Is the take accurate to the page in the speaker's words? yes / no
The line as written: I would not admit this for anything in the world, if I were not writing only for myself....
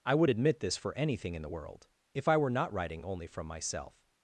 no